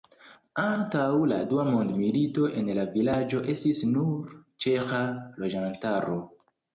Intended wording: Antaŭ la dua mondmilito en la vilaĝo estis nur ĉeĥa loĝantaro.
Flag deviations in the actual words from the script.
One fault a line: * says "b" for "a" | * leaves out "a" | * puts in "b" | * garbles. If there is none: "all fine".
all fine